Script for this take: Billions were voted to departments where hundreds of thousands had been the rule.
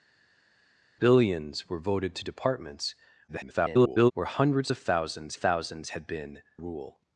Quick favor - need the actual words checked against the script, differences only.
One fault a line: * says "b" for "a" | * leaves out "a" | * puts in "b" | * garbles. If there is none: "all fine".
* garbles
* puts in "thousands"
* leaves out "the"